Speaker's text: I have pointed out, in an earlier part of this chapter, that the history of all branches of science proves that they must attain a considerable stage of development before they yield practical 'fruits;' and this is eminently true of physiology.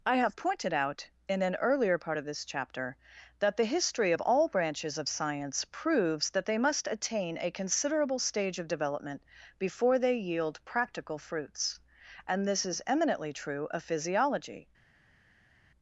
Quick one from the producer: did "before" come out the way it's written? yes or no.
yes